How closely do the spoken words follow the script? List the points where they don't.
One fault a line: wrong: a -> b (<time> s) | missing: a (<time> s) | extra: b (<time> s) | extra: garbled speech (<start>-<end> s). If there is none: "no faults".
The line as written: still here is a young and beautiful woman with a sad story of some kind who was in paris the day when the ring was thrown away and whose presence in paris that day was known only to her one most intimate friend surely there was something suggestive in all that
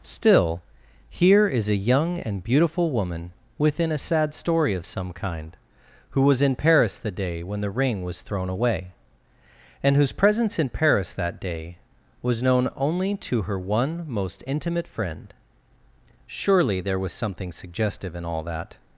wrong: with -> within (3.6 s)